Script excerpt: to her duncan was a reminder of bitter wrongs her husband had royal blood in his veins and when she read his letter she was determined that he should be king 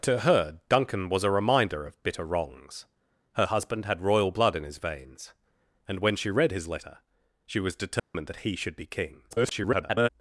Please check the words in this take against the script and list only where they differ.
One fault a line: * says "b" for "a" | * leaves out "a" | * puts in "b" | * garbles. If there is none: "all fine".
* garbles